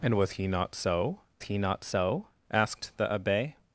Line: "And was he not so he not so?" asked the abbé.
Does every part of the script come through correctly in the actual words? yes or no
yes